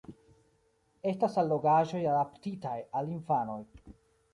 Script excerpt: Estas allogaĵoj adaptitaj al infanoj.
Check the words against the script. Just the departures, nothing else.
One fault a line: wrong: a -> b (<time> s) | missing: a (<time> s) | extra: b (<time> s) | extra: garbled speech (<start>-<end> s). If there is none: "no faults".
no faults